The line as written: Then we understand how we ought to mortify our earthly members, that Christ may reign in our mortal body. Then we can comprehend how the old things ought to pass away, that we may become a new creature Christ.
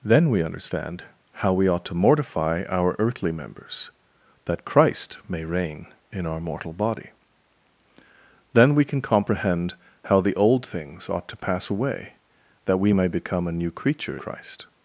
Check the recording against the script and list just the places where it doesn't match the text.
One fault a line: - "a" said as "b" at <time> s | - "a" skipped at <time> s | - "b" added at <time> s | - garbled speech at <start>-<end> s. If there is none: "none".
none